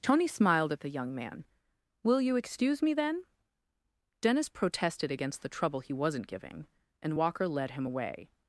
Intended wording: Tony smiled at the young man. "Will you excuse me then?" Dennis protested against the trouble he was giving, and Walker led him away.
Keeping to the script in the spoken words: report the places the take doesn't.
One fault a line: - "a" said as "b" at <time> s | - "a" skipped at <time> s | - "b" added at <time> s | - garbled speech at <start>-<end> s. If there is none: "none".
- "was" said as "wasn't" at 5.9 s